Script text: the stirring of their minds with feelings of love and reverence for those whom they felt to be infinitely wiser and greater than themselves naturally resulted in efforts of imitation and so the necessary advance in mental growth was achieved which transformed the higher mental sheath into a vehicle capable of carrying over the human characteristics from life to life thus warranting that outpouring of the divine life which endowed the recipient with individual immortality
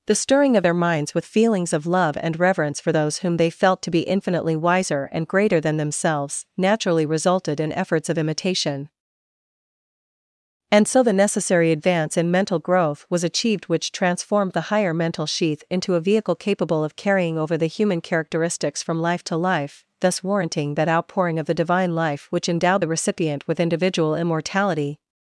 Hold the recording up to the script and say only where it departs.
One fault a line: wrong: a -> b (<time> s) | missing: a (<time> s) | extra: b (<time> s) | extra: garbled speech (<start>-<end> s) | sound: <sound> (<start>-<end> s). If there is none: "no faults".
no faults